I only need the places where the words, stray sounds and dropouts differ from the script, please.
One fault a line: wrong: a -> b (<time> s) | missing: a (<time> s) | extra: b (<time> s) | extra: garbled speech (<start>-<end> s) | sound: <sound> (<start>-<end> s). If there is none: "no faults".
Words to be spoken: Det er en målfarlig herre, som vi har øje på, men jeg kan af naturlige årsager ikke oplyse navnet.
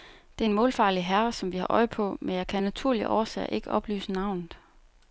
no faults